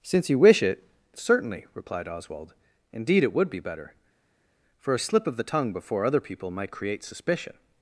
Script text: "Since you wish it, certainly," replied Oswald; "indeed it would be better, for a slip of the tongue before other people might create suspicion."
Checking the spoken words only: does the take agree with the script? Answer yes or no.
yes